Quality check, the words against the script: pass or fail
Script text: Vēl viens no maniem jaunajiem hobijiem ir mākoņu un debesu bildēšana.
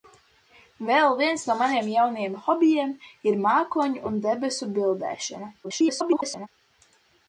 fail